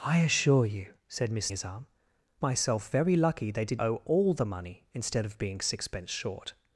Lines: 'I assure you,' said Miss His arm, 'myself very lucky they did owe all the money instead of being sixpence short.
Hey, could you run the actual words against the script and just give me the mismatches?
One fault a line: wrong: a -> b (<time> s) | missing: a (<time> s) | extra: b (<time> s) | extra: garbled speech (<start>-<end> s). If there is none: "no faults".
no faults